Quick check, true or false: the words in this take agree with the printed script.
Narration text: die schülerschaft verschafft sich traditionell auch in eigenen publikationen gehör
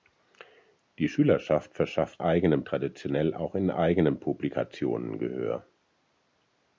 false